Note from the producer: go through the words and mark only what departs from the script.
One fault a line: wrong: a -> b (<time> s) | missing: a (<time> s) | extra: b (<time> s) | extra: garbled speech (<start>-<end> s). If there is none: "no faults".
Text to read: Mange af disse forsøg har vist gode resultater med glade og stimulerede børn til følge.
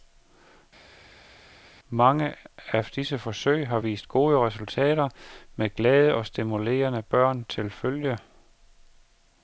no faults